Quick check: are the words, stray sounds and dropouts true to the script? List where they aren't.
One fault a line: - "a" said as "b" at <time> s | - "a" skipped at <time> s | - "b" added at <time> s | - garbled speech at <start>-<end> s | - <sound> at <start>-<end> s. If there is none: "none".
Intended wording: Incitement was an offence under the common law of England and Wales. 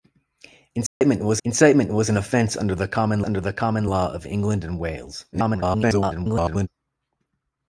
- dropout at 0.9-1.0 s
- "incitement was" added at 1.4 s
- "under the common" added at 3.2 s
- garbled speech at 5.3-6.7 s